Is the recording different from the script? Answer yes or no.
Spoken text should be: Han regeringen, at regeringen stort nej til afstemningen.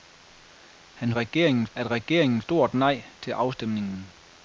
no